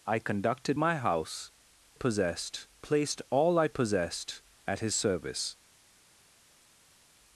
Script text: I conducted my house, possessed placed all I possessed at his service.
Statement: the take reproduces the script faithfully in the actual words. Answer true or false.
true